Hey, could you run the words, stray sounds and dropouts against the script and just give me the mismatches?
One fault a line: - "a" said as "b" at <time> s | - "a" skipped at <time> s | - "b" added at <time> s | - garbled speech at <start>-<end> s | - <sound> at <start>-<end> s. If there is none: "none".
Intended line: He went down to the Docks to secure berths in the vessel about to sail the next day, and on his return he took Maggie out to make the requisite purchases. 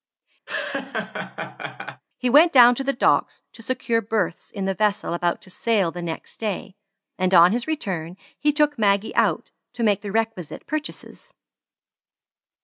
- laugh at 0.5-2.0 s